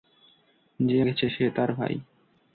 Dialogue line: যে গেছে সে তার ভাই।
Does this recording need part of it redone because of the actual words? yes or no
no